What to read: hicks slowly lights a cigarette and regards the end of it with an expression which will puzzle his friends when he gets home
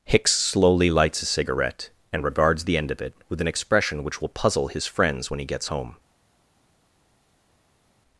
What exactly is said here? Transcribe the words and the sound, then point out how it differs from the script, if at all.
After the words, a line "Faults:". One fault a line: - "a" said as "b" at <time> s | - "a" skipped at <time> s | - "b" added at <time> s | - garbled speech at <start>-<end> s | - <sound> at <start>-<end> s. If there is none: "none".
hicks slowly lights a cigarette and regards the end of it with an expression which will puzzle his friends when he gets home
Faults:
none